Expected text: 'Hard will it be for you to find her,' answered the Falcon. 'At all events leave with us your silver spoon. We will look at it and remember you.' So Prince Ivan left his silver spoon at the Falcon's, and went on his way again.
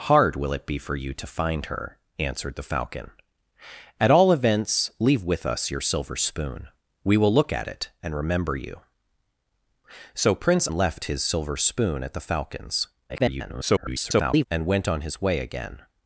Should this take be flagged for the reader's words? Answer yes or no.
yes